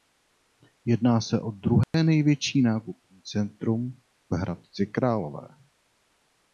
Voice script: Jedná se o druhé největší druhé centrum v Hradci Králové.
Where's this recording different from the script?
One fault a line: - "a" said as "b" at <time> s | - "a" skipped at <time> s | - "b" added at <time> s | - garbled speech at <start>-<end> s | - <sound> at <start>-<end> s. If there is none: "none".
- dropout at 1.8-1.9 s
- "druhé" said as "nákupní" at 2.6 s